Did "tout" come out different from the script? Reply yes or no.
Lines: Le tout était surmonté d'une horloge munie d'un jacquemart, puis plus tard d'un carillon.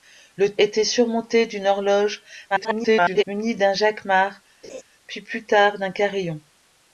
yes